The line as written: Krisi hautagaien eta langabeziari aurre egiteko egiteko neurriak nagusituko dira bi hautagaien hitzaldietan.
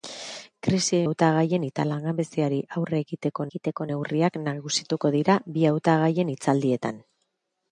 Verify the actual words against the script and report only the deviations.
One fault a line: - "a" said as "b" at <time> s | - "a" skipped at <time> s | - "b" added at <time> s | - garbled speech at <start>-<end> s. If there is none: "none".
none